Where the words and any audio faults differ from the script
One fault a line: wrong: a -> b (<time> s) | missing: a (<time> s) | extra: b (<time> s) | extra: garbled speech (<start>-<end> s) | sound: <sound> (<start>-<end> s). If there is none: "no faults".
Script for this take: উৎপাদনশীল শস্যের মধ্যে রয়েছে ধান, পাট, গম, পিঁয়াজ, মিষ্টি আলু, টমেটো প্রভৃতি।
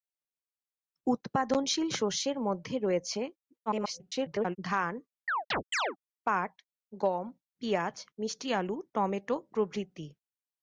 extra: garbled speech (3.7-4.6 s)
sound: chirp (5.3-6.0 s)